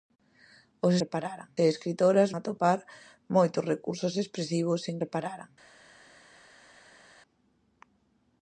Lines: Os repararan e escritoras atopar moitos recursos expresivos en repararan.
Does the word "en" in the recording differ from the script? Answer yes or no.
no